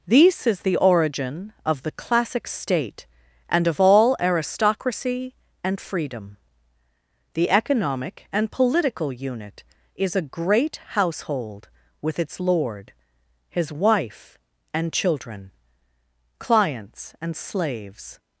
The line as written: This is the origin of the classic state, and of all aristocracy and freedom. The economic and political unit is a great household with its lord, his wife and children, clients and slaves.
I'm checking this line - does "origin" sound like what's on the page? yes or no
yes